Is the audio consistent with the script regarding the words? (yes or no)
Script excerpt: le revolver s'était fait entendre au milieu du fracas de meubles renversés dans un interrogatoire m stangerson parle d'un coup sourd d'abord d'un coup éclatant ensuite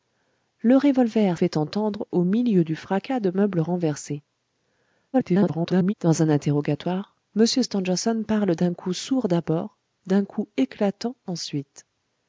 no